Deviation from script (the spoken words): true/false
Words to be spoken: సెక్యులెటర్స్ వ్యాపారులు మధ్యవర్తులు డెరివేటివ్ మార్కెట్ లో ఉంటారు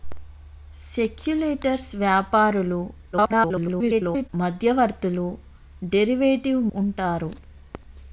true